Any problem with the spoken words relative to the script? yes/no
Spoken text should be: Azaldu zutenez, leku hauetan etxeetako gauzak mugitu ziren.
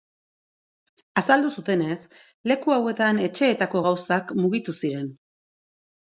no